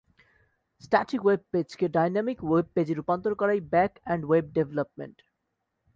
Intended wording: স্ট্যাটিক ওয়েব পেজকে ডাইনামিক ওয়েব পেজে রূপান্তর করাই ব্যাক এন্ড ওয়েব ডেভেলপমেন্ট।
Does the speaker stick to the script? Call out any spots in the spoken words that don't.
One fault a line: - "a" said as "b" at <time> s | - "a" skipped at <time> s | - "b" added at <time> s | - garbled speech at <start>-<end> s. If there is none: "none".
none